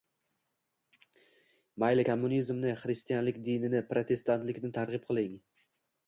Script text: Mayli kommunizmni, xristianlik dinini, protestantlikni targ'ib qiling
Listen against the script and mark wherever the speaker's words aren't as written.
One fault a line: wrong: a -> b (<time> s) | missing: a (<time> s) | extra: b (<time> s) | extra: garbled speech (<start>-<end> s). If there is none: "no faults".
no faults